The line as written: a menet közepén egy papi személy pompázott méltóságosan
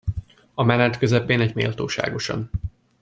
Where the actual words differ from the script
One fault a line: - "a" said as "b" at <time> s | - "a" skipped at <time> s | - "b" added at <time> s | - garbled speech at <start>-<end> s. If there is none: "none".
- "papi személy pompázott" skipped at 1.5 s